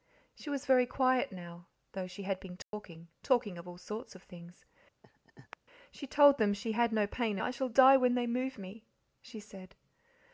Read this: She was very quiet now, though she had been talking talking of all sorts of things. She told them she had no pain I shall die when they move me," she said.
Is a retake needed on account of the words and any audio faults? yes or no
yes